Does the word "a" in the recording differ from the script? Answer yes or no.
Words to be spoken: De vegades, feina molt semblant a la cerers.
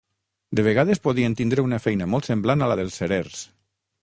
no